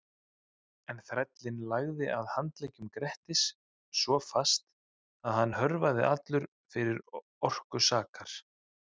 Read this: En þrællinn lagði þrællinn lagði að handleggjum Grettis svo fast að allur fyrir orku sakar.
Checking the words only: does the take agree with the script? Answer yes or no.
no